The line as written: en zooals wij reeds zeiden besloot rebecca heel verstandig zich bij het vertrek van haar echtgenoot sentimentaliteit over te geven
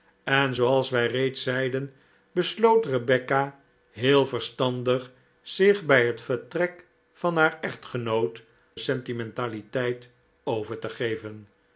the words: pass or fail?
pass